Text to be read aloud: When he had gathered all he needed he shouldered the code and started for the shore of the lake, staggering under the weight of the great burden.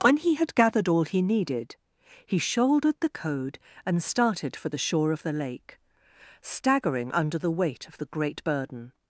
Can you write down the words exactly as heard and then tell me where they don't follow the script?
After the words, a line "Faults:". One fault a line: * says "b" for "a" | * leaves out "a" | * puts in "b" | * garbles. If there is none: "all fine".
When he had gathered all he needed he shouldered the code and started for the shore of the lake, staggering under the weight of the great burden.
Faults:
all fine